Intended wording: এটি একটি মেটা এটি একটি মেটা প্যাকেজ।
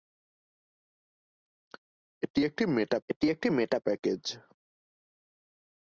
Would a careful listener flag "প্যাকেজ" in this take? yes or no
no